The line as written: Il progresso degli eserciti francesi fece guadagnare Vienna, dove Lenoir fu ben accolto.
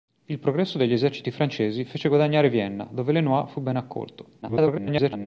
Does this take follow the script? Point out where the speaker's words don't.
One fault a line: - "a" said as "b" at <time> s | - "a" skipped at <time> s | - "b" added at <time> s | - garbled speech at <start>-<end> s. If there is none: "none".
- garbled speech at 4.4-5.3 s